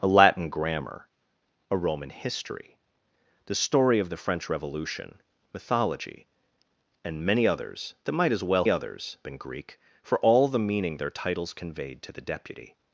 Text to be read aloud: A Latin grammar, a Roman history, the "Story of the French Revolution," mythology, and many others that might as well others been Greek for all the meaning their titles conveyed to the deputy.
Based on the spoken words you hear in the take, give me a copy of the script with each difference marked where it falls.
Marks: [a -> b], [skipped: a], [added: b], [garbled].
A Latin grammar, a Roman history, the "Story of the French Revolution," mythology, and many others that might as well others been Greek for all the meaning their titles conveyed to the deputy.